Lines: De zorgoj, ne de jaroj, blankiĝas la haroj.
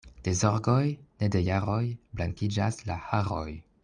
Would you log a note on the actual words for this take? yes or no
no